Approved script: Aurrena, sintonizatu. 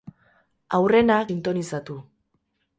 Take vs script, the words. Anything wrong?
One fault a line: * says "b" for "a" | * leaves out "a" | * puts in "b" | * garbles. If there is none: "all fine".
all fine